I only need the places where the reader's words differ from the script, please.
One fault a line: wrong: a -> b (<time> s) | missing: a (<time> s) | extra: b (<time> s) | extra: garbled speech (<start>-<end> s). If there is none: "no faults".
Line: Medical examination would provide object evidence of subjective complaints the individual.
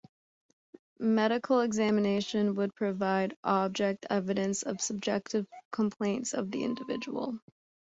extra: of (6.3 s)